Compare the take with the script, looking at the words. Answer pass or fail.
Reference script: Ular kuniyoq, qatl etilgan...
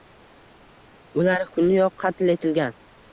pass